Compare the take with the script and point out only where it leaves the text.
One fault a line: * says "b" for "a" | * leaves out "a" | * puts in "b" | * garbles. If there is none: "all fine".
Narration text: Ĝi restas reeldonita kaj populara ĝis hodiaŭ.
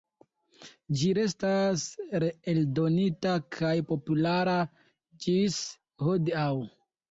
all fine